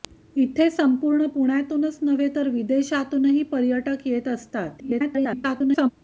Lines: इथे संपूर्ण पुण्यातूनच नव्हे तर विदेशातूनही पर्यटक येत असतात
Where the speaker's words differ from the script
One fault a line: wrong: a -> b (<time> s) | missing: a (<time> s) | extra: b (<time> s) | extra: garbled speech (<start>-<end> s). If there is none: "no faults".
extra: garbled speech (4.8-5.9 s)